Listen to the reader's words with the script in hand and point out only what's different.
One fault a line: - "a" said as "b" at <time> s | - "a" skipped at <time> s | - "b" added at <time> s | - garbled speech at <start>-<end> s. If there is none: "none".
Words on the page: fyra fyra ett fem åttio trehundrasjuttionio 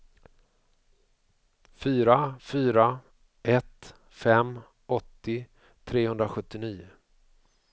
none